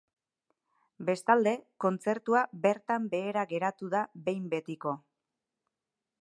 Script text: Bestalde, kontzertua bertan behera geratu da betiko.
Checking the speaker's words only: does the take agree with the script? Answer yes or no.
no